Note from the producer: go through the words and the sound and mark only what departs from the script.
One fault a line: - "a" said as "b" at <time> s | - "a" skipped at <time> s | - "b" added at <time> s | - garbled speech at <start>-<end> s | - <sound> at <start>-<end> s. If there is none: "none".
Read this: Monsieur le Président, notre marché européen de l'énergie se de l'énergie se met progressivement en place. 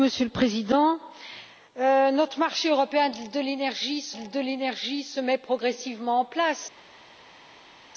none